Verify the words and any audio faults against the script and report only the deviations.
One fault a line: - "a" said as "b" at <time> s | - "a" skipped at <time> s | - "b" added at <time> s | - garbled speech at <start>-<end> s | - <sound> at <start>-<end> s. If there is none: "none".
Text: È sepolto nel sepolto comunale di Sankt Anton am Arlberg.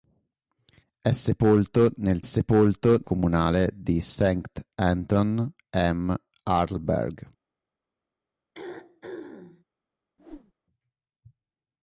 - throat clearing at 8.5-9.6 s
- whoosh at 10.2-10.5 s